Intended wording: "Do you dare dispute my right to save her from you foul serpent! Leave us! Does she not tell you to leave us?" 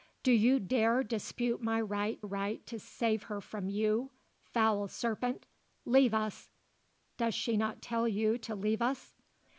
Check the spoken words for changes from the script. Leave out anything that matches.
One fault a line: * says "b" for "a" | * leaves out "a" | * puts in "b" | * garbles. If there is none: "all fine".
* puts in "right"